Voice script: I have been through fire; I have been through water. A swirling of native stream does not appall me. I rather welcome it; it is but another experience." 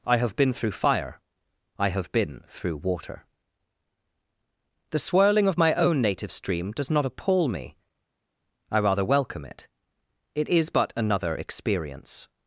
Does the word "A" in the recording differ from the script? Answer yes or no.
yes